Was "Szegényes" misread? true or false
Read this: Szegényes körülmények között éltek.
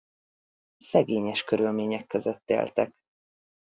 false